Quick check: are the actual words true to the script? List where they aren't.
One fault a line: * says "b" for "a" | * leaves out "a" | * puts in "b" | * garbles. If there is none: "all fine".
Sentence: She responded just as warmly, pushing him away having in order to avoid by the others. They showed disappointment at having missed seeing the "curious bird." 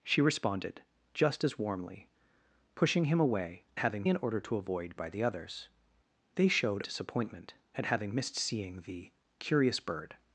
all fine